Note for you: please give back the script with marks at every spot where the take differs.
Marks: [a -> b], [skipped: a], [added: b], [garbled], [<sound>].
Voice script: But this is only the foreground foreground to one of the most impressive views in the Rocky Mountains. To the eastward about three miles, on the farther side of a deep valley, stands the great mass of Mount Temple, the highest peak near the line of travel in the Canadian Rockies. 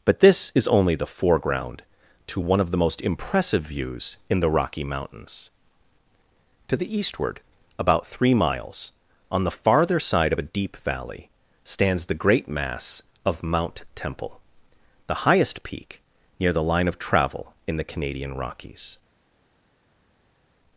But this is only the foreground [skipped: foreground] to one of the most impressive views in the Rocky Mountains. To the eastward about three miles, on the farther side of a deep valley, stands the great mass of Mount Temple, the highest peak near the line of travel in the Canadian Rockies.